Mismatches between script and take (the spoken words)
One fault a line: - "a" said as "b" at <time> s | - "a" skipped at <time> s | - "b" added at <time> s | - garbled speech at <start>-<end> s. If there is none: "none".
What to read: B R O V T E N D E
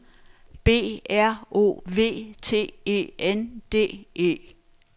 none